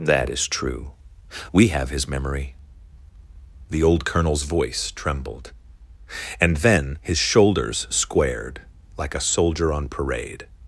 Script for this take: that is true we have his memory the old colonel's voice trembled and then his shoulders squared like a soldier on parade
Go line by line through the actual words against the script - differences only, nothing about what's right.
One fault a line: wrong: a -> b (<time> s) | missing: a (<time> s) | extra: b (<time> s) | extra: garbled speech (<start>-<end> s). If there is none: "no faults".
no faults